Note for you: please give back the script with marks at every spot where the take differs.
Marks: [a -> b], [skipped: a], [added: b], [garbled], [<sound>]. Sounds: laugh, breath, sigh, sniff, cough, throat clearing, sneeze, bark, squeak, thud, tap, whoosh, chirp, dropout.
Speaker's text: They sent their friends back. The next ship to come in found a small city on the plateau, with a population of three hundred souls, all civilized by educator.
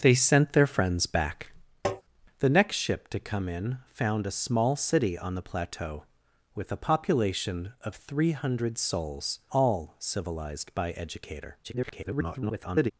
They sent their friends back. [tap] The next ship to come in found a small city on the plateau, with a population of three hundred souls, all civilized by educator. [garbled]